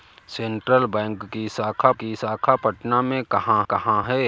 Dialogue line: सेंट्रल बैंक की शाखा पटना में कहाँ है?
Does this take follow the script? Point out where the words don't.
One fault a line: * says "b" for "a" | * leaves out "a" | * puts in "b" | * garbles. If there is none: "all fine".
* puts in "की शाखा"
* puts in "कहाँ"